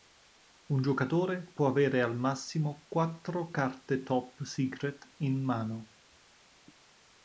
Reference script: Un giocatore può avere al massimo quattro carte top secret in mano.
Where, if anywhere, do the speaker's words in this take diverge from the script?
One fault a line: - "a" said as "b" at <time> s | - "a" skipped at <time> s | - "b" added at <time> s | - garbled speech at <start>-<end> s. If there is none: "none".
none